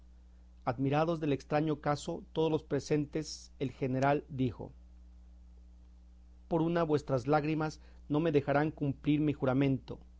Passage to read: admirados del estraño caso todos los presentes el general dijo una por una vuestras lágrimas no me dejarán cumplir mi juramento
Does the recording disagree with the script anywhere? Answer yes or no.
yes